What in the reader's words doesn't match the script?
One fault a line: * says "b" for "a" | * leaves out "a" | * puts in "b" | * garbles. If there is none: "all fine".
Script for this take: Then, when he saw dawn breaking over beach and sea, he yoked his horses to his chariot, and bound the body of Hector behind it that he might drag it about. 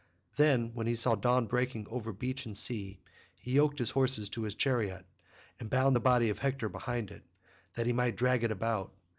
all fine